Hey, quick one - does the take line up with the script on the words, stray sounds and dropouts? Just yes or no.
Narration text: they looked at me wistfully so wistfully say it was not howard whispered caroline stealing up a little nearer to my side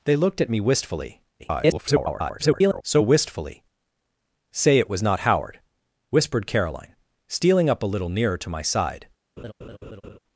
no